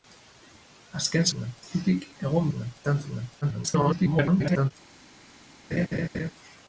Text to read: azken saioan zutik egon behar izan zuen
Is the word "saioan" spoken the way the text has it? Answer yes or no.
no